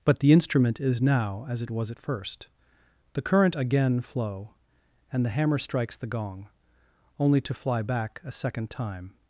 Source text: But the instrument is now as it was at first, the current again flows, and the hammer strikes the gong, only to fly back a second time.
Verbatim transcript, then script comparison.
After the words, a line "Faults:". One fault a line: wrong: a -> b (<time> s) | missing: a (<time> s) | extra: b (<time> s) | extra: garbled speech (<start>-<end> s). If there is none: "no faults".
But the instrument is now as it was at first, the current again flow, and the hammer strikes the gong, only to fly back a second time.
Faults:
wrong: flows -> flow (4.0 s)